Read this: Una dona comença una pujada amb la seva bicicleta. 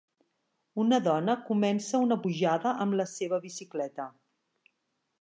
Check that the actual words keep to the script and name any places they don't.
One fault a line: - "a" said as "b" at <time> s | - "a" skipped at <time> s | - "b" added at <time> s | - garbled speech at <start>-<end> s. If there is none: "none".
none